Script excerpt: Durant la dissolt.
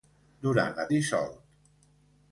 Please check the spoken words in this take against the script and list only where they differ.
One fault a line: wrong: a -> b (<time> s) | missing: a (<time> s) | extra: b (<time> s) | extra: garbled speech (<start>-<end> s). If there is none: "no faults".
no faults